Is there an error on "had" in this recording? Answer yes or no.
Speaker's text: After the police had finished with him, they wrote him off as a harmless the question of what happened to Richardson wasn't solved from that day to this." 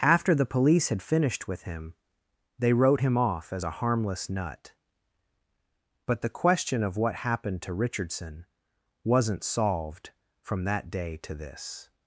no